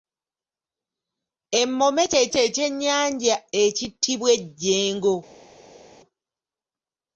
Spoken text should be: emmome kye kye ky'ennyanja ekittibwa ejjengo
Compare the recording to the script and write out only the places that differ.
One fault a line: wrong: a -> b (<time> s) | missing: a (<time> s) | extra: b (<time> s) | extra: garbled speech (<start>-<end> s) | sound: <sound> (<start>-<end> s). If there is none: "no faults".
no faults